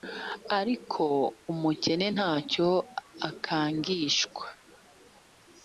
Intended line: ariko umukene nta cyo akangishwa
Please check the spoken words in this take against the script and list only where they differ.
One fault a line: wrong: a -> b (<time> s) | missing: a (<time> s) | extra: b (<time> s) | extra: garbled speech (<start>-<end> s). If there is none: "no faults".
no faults